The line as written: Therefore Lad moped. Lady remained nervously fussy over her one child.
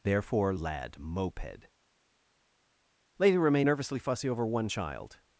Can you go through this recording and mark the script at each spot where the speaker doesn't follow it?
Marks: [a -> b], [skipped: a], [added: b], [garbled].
Therefore Lad moped. Lady remained nervously fussy over [skipped: her] one child.